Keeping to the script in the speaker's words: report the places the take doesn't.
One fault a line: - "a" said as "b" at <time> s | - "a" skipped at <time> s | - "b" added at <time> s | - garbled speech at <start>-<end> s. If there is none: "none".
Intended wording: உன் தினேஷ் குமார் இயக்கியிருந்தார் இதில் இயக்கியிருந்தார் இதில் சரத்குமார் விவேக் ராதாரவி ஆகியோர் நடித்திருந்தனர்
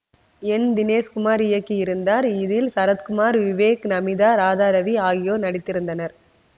- "உன்" said as "என்" at 0.4 s
- "இயக்கியிருந்தார் இதில்" skipped at 2.7 s
- "நமீதா" added at 3.9 s